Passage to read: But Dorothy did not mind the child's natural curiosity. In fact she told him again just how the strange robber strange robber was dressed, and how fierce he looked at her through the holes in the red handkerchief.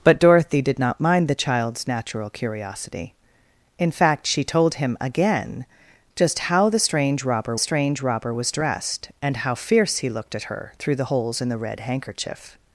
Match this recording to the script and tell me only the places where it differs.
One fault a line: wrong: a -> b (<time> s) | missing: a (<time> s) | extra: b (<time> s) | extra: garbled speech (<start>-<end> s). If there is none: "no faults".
no faults